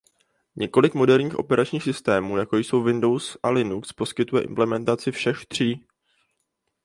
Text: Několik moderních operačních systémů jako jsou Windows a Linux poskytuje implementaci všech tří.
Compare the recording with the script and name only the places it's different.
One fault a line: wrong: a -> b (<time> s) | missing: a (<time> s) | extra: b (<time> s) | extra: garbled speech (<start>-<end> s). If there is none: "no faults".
no faults